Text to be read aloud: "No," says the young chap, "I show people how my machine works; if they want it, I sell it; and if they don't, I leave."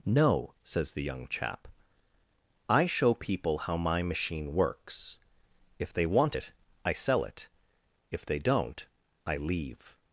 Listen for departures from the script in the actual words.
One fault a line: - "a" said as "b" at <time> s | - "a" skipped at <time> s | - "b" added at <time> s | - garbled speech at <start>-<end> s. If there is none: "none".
- "and" skipped at 7.5 s